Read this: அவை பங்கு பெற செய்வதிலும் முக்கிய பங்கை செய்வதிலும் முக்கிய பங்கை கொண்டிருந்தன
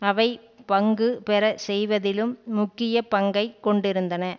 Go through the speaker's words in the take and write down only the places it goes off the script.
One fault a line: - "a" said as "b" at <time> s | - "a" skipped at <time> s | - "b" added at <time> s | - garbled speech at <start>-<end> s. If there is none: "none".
- "செய்வதிலும் முக்கிய பங்கை" skipped at 3.5 s